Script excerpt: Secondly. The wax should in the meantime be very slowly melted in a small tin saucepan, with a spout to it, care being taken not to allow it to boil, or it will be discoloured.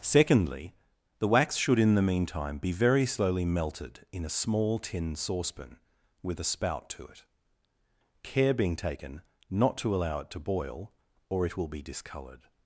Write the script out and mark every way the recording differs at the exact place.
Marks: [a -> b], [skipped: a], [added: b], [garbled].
Secondly. The wax should in the meantime be very slowly melted in a small tin saucepan, with a spout to it, care being taken not to allow it to boil, or it will be discoloured.